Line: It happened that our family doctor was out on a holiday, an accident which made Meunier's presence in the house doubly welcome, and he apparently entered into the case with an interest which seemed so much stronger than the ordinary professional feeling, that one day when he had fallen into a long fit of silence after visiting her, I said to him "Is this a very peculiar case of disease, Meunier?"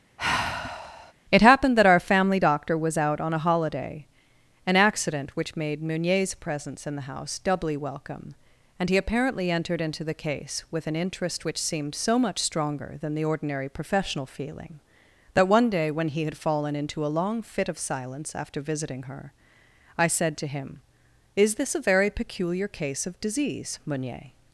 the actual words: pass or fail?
pass